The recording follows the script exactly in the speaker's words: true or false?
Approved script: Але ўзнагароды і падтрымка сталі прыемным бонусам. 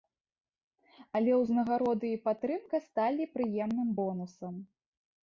true